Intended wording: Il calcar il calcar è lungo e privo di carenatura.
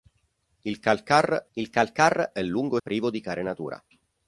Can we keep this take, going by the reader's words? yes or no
yes